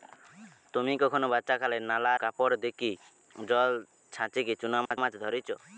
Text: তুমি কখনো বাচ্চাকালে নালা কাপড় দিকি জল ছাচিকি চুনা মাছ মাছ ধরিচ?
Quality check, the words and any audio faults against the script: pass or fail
fail